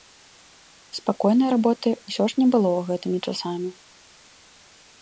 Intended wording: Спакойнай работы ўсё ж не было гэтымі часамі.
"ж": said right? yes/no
yes